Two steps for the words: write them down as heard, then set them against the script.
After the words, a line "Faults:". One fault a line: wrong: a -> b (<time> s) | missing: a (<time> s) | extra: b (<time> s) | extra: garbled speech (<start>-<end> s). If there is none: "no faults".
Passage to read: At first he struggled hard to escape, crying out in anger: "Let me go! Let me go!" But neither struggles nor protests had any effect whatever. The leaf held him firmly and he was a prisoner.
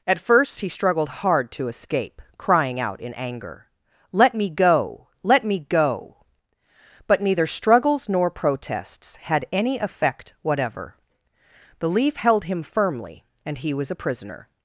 At first he struggled hard to escape, crying out in anger: "Let me go! Let me go!" But neither struggles nor protests had any effect whatever. The leaf held him firmly and he was a prisoner.
Faults:
no faults